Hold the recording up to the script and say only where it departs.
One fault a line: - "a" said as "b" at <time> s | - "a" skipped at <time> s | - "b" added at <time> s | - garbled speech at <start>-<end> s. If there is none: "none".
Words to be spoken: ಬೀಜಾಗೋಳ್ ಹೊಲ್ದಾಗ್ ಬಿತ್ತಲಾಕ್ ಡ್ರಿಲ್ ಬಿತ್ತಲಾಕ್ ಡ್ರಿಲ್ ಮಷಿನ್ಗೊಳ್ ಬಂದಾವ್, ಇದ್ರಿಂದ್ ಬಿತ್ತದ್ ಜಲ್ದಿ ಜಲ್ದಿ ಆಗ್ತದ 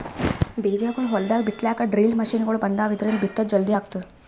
- "ಬಿತ್ತಲಾಕ್ ಡ್ರಿಲ್" skipped at 2.2 s
- "ಜಲ್ದಿ" skipped at 3.8 s